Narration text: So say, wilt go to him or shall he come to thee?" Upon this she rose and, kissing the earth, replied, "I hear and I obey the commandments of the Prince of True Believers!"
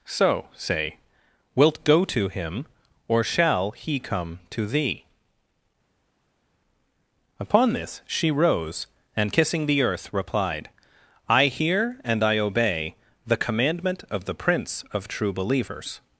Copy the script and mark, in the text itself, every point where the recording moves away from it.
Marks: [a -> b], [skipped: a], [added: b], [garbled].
So say, wilt go to him or shall he come to thee?" Upon this she rose and, kissing the earth, replied, "I hear and I obey the [commandments -> commandment] of the Prince of True Believers!"